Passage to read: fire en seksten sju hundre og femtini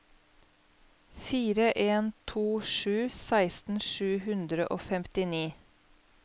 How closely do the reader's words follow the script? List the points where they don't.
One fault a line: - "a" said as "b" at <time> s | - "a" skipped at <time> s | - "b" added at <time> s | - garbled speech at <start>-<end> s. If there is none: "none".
- "to sju" added at 2.3 s